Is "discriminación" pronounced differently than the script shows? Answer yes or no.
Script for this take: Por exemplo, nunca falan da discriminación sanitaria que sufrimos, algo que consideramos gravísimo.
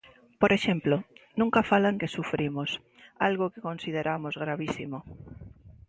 yes